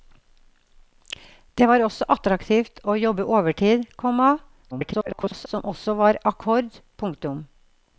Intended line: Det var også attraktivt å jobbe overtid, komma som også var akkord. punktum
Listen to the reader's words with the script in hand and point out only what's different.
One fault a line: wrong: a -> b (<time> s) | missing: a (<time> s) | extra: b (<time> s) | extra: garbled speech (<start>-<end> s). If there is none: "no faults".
extra: garbled speech (4.7-5.5 s)